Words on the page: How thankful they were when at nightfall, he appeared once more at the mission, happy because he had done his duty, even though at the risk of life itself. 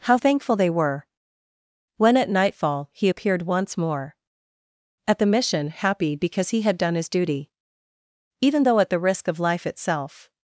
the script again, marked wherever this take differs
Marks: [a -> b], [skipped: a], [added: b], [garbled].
How thankful they were when at nightfall, he appeared once more at the mission, happy because he had done his duty, even though at the risk of life itself.